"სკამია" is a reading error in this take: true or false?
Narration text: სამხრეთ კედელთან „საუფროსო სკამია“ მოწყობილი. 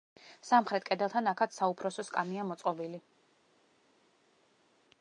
false